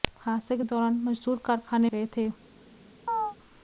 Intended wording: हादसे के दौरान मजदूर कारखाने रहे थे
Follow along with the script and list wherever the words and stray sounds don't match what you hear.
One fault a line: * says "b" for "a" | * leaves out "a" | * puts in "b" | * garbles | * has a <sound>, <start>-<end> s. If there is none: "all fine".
* has a chirp, 3.1-3.4 s